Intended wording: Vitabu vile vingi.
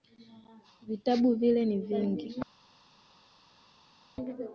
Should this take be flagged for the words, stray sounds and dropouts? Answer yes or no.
yes